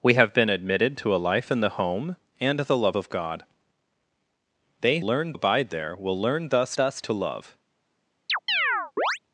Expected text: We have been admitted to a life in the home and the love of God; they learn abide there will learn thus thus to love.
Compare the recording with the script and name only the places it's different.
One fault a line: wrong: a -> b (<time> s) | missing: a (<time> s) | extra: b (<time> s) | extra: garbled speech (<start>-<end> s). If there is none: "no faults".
no faults